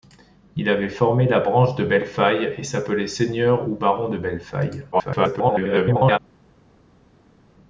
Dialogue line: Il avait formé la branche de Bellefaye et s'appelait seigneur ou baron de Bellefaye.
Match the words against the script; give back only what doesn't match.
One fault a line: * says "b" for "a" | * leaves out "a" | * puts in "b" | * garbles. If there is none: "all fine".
* garbles